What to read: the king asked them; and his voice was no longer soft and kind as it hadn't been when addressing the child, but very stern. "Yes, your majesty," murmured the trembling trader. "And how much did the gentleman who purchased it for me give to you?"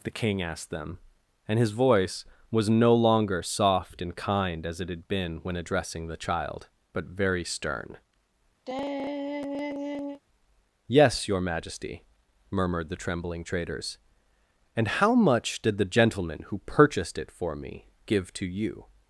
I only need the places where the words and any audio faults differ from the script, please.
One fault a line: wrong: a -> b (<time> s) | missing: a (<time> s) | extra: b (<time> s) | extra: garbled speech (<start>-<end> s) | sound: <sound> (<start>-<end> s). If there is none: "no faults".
wrong: hadn't -> had (4.9 s)
sound: sigh (8.7-10.2 s)
wrong: trader -> traders (13.4 s)